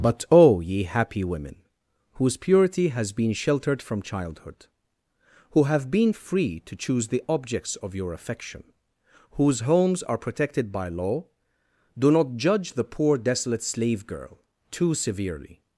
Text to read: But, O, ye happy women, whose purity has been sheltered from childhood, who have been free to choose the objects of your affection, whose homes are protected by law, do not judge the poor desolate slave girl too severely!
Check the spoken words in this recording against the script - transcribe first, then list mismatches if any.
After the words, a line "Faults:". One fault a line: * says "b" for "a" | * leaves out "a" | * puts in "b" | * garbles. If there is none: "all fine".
But, O, ye happy women, whose purity has been sheltered from childhood, who have been free to choose the objects of your affection, whose homes are protected by law, do not judge the poor desolate slave girl too severely!
Faults:
all fine